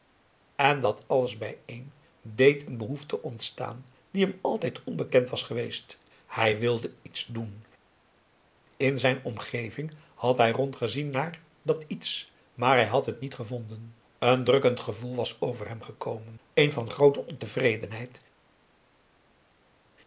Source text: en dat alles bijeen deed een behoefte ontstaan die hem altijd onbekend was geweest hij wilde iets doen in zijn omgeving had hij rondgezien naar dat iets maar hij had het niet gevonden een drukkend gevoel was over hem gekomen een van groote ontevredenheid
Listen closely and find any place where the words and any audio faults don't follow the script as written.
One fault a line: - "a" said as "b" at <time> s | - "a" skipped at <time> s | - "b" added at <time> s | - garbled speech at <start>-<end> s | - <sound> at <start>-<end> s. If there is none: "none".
none